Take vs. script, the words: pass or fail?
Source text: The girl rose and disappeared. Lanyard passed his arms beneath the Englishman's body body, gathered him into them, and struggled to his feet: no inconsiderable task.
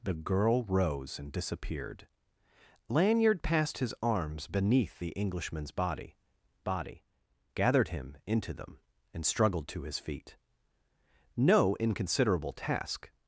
pass